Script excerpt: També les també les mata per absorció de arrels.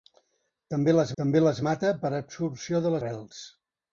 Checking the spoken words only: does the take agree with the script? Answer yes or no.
yes